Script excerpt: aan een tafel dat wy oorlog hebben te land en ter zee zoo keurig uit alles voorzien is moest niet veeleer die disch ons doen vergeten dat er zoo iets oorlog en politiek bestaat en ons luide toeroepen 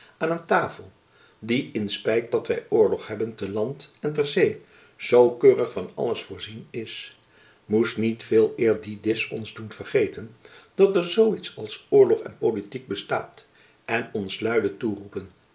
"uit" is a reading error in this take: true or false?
true